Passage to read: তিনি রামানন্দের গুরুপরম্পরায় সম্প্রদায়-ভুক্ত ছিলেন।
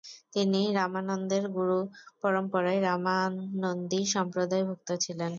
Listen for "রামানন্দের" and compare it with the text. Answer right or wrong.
right